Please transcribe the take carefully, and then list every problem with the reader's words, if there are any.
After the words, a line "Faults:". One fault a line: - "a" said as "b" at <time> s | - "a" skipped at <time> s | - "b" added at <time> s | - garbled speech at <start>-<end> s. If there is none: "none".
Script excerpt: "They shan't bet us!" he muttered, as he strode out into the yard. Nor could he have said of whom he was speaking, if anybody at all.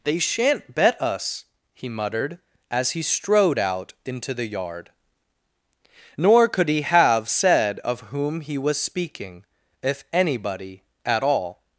"They shan't bet us!" he muttered, as he strode out into the yard. Nor could he have said of whom he was speaking, if anybody at all.
Faults:
none